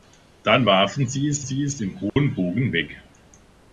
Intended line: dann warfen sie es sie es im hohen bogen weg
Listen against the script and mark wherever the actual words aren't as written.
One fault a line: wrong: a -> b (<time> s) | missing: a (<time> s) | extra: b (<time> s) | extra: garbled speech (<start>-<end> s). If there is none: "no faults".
no faults